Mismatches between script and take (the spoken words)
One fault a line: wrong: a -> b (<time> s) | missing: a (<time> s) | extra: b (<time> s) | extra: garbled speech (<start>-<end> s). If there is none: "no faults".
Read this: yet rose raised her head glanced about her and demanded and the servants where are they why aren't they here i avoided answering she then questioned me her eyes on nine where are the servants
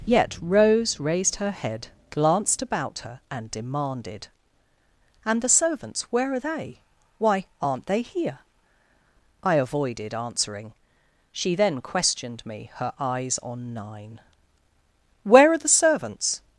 no faults